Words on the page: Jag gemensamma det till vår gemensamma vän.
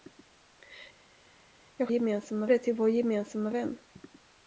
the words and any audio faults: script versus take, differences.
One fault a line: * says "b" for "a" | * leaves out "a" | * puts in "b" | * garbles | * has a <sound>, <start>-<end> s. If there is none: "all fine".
all fine